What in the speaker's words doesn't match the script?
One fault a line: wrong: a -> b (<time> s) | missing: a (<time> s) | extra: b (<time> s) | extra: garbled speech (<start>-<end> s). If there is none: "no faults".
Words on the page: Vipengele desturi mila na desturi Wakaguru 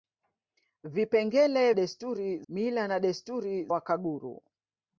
no faults